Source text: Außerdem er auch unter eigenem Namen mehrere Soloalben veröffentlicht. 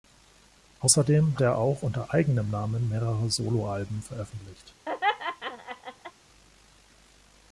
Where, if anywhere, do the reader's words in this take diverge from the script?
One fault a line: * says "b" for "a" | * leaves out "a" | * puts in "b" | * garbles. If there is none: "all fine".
all fine